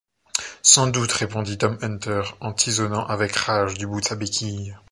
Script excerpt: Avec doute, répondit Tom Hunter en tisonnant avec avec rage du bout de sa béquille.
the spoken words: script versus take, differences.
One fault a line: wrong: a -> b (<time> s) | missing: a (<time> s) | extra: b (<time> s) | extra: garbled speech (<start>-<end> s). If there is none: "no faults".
wrong: Avec -> Sans (0.6 s)
missing: avec (3.4 s)